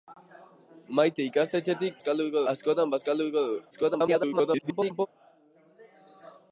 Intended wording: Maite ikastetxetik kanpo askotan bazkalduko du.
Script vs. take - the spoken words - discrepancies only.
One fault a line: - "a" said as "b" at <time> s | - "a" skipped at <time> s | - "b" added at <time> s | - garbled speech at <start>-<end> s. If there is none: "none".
- "kanpo" said as "bazkalduko" at 2.0 s
- garbled speech at 3.7-5.1 s